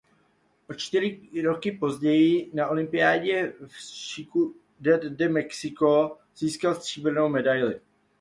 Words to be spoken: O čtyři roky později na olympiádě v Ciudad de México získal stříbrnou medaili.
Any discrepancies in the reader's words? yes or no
no